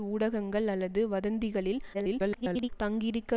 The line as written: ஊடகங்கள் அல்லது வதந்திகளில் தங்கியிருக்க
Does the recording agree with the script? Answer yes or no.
no